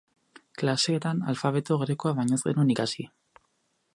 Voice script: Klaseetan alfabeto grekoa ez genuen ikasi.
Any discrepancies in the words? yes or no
yes